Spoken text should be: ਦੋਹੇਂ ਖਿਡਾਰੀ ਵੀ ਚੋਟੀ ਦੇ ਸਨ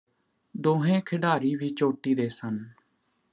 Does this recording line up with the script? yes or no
yes